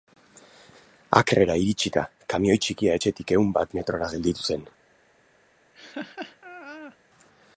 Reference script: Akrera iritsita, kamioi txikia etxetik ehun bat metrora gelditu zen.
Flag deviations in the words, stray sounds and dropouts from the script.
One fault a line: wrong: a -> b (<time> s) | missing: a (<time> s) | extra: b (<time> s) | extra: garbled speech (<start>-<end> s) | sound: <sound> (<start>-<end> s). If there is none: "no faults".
sound: laugh (5.7-7.0 s)